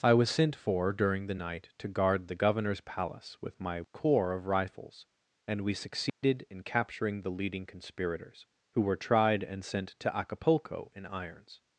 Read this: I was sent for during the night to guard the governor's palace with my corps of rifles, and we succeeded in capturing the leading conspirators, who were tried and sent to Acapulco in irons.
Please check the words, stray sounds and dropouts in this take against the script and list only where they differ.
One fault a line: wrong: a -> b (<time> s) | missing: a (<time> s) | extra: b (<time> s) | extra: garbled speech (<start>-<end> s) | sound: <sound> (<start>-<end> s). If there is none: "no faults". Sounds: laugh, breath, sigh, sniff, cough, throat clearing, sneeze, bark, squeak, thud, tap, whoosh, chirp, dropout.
sound: dropout (6.1-6.2 s)